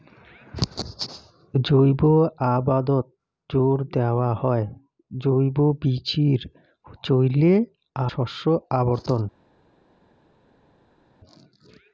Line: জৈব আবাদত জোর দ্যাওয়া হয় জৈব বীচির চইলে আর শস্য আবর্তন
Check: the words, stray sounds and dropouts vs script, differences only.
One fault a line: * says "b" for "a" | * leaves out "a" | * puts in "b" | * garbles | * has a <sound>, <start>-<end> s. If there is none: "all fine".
* leaves out "আর"